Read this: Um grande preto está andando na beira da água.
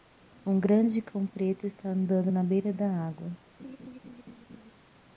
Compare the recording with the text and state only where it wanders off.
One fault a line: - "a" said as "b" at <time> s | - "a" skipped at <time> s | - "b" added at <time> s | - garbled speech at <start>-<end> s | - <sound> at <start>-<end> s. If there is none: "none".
- "cão" added at 1.0 s
- laugh at 3.6-4.7 s